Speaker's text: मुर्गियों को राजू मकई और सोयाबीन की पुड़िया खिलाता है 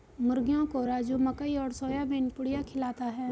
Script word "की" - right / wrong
wrong